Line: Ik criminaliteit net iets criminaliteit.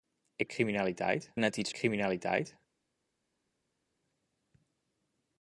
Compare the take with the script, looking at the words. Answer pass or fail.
pass